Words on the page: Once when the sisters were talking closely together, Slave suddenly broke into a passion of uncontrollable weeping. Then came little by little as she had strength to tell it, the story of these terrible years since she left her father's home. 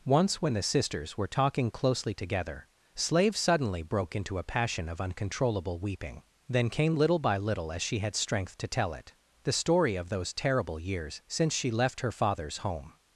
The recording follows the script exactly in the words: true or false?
false